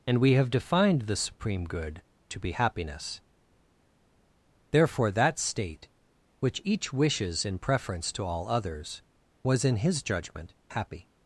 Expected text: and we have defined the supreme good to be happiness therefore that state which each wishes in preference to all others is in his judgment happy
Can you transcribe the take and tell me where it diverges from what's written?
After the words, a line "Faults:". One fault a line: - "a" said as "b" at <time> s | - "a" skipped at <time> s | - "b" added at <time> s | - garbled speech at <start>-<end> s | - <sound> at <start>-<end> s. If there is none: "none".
and we have defined the supreme good to be happiness therefore that state which each wishes in preference to all others was in his judgment happy
Faults:
- "is" said as "was" at 9.4 s